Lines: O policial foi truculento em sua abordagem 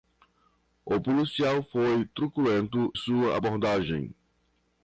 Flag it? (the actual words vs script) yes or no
yes